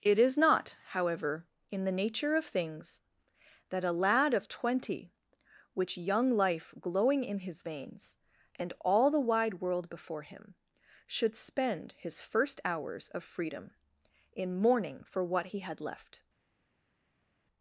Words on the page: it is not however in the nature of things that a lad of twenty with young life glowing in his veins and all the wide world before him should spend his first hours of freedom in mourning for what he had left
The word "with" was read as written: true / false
false